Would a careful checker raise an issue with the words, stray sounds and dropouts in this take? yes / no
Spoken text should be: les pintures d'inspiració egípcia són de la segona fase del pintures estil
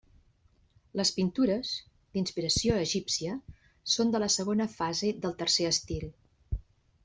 yes